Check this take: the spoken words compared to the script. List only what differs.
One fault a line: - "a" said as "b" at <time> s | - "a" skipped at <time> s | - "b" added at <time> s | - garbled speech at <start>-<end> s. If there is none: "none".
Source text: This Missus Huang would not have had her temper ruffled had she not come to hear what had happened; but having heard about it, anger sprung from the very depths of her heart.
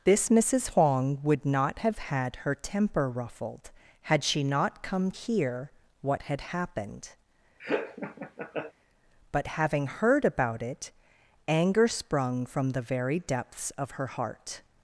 - "to" skipped at 5.1 s